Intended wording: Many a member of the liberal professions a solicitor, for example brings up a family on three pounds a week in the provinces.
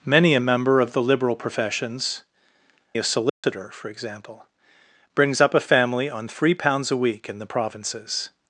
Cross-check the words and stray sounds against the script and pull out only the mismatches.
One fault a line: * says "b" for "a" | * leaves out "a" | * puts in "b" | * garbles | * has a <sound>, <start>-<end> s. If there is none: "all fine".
* has a dropout, 3.3-3.4 s